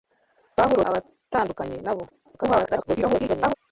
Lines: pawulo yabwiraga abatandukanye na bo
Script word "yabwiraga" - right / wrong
wrong